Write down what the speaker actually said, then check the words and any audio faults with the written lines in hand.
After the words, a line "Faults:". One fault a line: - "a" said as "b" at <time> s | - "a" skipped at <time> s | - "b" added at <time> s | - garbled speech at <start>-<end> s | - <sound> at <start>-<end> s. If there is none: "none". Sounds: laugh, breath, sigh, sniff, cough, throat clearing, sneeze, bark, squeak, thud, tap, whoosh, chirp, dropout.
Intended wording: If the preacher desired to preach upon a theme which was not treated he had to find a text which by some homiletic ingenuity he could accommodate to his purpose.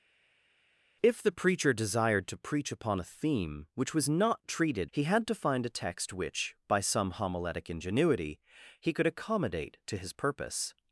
If the preacher desired to preach upon a theme which was not treated he had to find a text which by some homiletic ingenuity he could accommodate to his purpose.
Faults:
none